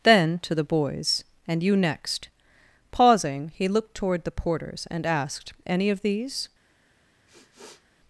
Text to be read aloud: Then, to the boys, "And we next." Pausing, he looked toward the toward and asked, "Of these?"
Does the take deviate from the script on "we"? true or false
true